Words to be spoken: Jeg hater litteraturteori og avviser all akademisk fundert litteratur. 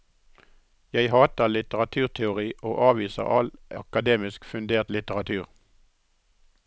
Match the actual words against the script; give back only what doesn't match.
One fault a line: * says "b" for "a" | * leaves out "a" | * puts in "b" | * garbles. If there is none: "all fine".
all fine